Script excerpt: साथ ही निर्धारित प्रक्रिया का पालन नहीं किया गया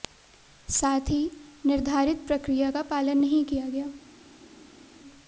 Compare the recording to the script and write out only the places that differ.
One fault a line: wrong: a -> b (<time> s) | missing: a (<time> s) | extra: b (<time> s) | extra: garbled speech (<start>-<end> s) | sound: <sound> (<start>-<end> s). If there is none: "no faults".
no faults